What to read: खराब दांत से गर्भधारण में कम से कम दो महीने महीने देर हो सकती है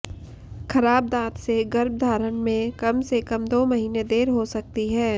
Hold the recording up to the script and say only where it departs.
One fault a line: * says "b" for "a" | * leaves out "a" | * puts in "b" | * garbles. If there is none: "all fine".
* leaves out "महीने"